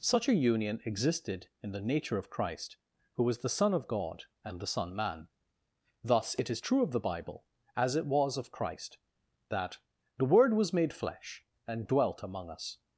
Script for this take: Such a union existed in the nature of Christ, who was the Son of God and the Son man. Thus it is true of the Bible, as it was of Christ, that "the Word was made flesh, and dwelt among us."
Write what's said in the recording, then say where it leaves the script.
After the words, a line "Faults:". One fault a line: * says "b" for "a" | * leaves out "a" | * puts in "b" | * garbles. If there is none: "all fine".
Such a union existed in the nature of Christ, who was the Son of God and the Son man. Thus it is true of the Bible, as it was of Christ, that "the Word was made flesh, and dwelt among us."
Faults:
all fine